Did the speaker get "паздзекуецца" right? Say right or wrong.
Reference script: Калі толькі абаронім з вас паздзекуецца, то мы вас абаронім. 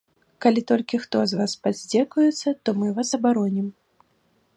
right